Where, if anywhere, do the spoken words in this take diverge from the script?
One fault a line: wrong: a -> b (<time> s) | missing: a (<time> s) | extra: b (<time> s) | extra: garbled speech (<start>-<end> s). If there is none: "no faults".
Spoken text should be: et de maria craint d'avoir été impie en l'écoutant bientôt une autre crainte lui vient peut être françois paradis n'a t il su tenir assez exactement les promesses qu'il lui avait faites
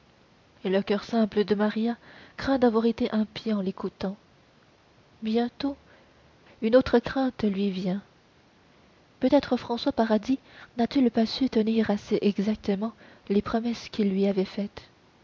extra: le coeur simple (0.7 s)
extra: pas (11.1 s)